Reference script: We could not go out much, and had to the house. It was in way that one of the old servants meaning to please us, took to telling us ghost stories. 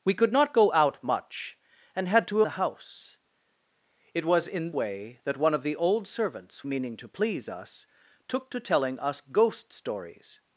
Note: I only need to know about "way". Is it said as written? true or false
true